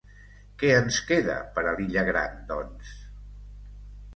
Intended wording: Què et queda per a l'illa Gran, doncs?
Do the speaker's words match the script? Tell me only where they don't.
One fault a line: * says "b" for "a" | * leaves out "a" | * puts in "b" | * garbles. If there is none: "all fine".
* says "ens" for "et"